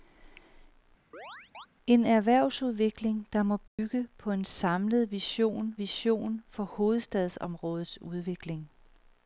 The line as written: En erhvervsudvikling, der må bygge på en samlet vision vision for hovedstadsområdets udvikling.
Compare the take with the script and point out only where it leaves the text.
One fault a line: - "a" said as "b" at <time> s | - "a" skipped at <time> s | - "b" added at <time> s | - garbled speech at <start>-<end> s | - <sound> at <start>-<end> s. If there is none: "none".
- chirp at 1.1-1.7 s
- dropout at 3.7-3.8 s